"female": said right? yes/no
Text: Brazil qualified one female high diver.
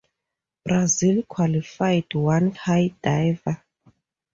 no